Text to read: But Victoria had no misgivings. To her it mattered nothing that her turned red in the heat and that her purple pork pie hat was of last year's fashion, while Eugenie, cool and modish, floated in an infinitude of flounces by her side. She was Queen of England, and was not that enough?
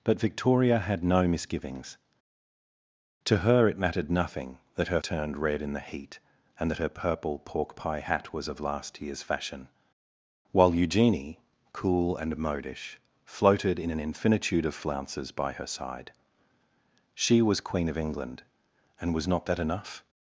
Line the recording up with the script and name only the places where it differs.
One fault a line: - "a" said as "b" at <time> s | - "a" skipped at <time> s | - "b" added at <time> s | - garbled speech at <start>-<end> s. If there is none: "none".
none